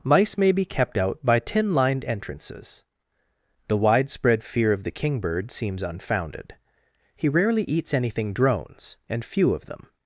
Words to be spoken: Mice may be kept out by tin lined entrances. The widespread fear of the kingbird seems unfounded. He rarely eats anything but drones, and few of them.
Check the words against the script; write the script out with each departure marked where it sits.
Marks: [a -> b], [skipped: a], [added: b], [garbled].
Mice may be kept out by tin lined entrances. The widespread fear of the kingbird seems unfounded. He rarely eats anything [skipped: but] drones, and few of them.